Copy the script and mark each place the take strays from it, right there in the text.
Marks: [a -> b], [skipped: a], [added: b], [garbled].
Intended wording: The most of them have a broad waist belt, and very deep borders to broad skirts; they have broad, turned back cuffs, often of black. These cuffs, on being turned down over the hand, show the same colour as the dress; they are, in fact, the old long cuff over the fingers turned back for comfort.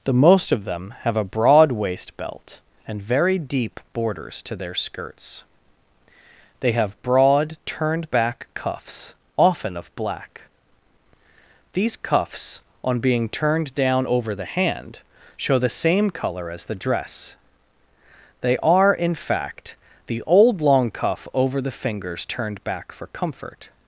The most of them have a broad waist belt, and very deep borders to [broad -> their] skirts; they have broad, turned back cuffs, often of black. These cuffs, on being turned down over the hand, show the same colour as the dress; they are, in fact, the old long cuff over the fingers turned back for comfort.